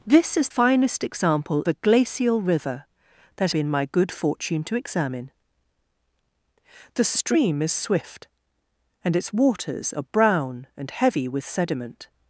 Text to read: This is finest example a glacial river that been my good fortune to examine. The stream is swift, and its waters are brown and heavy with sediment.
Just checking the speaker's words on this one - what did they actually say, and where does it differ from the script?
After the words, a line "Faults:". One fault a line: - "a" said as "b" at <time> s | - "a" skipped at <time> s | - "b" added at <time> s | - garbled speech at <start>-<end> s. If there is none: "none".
This is finest example a glacial river that been my good fortune to examine. The stream is swift, and its waters are brown and heavy with sediment.
Faults:
none